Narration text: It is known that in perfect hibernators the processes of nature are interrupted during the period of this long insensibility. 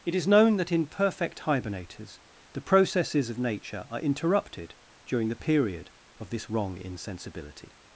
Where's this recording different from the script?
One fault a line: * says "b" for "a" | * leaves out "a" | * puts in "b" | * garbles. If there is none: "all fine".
* says "wrong" for "long"